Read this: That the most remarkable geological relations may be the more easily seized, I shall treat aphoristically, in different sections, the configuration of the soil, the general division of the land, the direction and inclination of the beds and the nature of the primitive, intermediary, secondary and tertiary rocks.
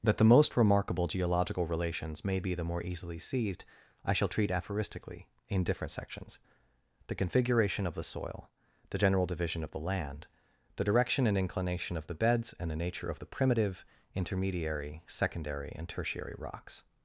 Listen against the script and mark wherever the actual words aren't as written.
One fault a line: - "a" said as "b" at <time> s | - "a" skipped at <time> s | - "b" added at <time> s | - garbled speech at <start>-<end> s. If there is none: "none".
none